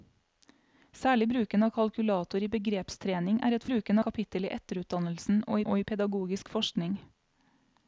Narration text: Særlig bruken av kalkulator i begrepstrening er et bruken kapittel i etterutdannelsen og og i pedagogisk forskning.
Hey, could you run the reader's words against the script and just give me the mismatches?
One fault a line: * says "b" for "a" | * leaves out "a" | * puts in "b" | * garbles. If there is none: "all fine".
all fine